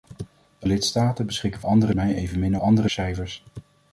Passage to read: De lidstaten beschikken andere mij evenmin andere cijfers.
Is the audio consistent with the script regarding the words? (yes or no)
yes